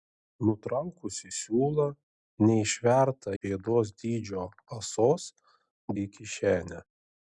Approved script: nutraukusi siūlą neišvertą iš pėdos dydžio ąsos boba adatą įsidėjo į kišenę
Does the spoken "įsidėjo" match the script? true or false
false